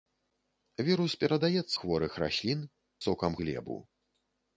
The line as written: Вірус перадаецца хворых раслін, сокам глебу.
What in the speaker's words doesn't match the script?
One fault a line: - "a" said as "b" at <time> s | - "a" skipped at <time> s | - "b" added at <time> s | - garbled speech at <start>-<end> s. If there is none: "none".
none